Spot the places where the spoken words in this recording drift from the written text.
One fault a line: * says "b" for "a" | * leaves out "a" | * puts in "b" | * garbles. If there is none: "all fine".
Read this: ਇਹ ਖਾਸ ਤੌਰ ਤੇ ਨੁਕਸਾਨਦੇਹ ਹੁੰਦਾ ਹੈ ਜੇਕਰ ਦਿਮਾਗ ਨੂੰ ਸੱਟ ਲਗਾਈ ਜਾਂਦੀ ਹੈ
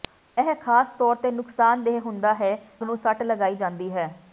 * leaves out "ਜੇਕਰ ਦਿਮਾਗ"